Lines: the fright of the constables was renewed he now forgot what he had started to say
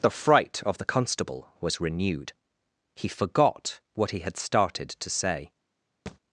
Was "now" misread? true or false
true